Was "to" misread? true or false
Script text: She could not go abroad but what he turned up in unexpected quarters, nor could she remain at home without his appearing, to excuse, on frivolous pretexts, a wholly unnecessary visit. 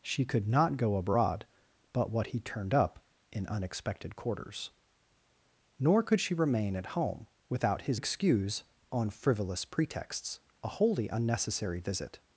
true